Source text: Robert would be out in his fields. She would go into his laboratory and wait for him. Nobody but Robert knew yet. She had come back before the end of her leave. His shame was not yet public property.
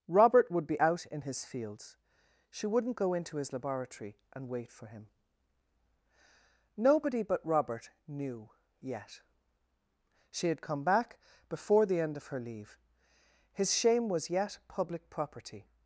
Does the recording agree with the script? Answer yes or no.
no